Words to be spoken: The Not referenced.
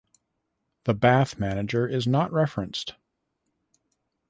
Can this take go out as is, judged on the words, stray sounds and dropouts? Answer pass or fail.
fail